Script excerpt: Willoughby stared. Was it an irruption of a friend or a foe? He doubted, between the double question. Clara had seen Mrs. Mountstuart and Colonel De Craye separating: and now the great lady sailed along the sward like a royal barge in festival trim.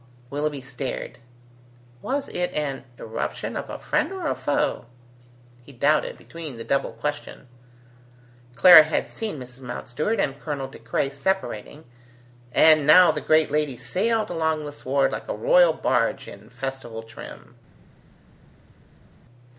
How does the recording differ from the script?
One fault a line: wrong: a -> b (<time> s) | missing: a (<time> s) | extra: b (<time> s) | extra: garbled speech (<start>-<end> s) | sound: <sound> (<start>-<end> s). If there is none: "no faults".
no faults